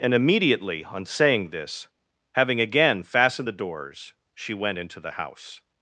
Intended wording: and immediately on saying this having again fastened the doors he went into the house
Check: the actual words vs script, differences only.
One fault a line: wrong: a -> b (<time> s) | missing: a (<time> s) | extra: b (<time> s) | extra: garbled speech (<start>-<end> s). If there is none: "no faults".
wrong: he -> she (4.4 s)